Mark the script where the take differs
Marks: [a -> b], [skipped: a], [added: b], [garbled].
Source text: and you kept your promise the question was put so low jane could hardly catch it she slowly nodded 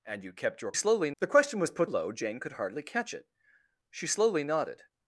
and you kept your [promise -> slowly] the question was put [skipped: so] low jane could hardly catch it she slowly nodded